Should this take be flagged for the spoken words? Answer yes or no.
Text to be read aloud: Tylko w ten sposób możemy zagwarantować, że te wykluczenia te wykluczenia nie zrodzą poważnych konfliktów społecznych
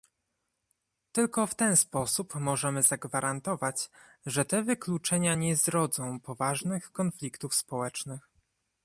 yes